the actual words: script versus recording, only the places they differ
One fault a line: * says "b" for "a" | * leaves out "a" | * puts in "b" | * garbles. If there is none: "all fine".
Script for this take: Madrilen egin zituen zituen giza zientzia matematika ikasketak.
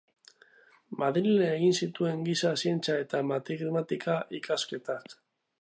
* leaves out "zituen"
* puts in "eta"